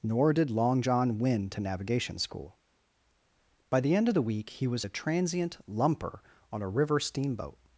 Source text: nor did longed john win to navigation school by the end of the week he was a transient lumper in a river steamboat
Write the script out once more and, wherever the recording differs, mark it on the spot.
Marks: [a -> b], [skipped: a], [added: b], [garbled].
nor did [longed -> long] john win to navigation school by the end of the week he was a transient lumper [in -> on] a river steamboat